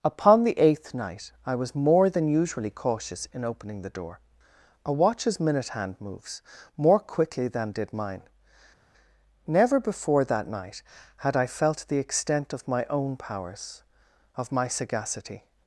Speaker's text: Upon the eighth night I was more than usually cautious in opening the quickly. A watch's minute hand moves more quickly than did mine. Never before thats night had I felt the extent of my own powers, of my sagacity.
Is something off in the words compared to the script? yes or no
yes